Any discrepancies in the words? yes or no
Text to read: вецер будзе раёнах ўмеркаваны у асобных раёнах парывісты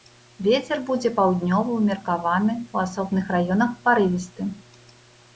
yes